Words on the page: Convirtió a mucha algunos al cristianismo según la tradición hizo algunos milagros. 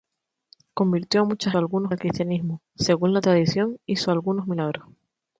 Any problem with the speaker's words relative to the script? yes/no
no